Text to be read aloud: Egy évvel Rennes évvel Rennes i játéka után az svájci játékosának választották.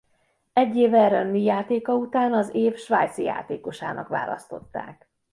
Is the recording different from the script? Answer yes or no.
yes